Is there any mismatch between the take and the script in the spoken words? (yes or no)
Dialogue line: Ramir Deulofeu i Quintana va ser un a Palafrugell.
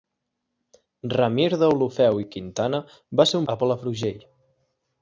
no